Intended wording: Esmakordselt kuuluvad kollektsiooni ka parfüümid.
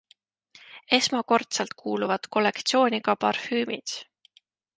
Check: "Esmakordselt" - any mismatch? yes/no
no